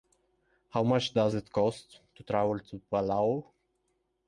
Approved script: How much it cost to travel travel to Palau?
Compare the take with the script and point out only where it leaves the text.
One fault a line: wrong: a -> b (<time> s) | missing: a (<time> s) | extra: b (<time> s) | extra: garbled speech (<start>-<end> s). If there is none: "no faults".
extra: does (1.1 s)
missing: travel (2.6 s)